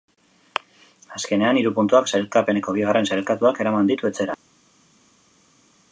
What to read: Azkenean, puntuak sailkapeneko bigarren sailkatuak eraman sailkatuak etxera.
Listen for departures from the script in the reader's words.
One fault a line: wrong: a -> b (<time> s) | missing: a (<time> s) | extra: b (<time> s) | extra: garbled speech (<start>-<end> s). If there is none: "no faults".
extra: hiru (1.6 s)
wrong: sailkatuak -> ditu (3.9 s)